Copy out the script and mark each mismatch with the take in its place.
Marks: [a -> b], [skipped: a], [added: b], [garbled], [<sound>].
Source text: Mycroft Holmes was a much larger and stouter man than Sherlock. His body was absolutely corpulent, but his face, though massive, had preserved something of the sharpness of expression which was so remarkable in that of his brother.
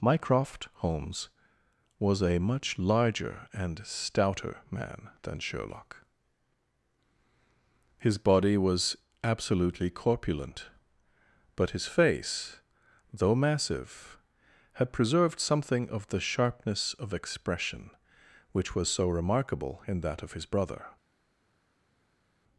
Mycroft Holmes was a much larger and stouter man than Sherlock. His body was absolutely corpulent, but his face, though massive, had preserved something of the sharpness of expression which was so remarkable in that of his brother.